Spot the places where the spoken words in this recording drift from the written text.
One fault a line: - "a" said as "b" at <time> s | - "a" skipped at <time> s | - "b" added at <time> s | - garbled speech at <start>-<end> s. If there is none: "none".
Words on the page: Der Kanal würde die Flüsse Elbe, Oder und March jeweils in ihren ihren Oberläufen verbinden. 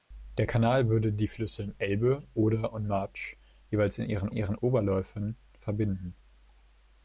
none